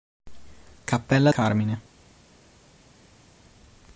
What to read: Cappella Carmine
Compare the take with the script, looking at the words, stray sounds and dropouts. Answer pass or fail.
pass